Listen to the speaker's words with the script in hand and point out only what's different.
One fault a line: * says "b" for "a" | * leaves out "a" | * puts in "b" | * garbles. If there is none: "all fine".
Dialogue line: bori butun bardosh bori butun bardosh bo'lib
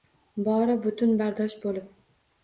* leaves out "bori butun bardosh"